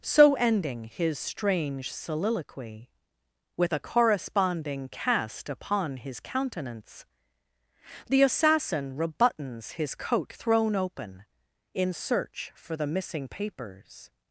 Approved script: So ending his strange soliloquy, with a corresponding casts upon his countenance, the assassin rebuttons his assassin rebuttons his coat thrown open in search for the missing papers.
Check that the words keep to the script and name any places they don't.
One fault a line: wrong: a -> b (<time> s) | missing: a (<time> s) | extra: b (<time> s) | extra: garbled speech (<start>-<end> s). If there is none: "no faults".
wrong: casts -> cast (4.9 s)
missing: assassin rebuttons his (9.9 s)